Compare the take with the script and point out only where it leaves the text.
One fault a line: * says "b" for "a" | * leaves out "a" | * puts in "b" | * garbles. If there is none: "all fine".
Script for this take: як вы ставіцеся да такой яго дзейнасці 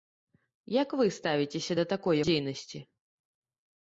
* leaves out "яго"